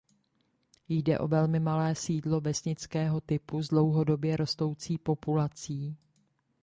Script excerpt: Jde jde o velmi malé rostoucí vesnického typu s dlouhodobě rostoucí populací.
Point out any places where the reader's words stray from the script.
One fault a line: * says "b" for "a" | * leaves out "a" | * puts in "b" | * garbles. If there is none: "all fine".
* leaves out "jde"
* says "sídlo" for "rostoucí"